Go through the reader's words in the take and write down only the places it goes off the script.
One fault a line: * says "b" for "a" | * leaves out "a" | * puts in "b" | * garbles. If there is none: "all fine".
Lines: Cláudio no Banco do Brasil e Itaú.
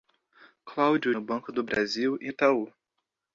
all fine